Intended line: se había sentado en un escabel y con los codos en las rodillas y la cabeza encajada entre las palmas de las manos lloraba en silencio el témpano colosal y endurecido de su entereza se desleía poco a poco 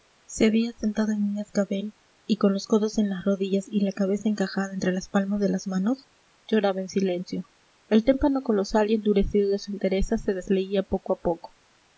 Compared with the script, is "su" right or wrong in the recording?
right